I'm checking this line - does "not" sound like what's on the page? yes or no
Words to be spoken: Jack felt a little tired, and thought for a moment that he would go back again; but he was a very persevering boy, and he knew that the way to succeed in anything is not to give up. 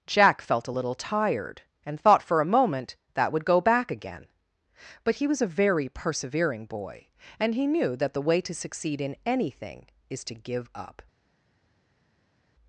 no